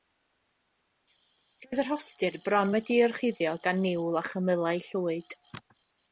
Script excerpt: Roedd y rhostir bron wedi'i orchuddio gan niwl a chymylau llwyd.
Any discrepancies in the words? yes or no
no